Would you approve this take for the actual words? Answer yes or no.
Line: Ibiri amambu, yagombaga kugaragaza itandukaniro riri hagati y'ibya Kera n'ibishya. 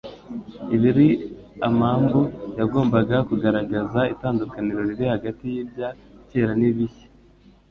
yes